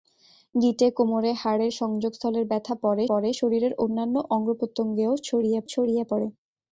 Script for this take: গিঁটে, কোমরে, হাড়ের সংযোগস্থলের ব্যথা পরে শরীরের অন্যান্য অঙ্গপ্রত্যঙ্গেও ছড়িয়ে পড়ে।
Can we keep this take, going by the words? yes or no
no